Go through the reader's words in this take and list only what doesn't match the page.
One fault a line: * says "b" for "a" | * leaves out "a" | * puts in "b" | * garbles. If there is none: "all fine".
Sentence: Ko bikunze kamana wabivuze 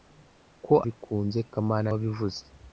all fine